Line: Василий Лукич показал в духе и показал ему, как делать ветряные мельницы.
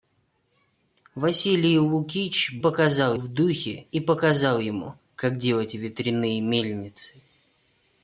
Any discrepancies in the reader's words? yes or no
no